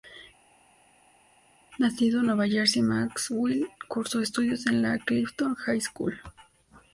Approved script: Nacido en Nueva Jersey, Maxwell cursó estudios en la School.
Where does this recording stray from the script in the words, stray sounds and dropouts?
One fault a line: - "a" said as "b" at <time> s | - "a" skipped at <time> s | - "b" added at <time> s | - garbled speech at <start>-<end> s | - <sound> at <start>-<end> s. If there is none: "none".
- "Clifton High" added at 5.0 s